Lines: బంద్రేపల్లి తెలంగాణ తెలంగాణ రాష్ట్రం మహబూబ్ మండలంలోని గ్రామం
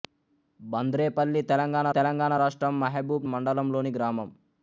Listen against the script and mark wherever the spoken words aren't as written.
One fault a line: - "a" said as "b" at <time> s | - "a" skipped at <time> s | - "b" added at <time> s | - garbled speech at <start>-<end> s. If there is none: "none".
none